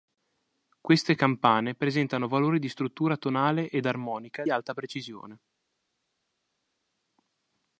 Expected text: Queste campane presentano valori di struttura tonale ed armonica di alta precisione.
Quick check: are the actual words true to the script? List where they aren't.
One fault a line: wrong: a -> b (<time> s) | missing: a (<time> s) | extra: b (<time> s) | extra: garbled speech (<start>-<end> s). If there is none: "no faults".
missing: di (4.5 s)